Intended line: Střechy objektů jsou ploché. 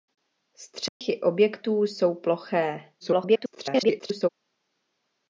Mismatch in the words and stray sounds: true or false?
true